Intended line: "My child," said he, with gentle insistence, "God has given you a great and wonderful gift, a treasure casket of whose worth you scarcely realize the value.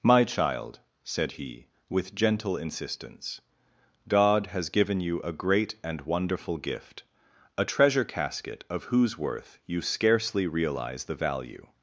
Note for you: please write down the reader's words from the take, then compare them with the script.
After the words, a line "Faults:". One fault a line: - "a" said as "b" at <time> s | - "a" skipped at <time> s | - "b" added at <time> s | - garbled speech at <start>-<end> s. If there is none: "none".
"My child," said he, with gentle insistence, "God has given you a great and wonderful gift, a treasure casket of whose worth you scarcely realize the value.
Faults:
none